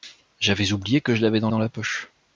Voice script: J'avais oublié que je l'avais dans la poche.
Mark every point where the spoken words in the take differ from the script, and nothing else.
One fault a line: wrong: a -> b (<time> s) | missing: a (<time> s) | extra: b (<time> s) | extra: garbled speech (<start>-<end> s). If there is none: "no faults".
extra: dans (1.5 s)